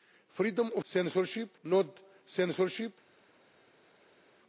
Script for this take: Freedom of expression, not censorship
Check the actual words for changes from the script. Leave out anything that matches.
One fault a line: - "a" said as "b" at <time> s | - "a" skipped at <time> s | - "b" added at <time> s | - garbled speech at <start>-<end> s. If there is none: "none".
- "expression" said as "censorship" at 0.8 s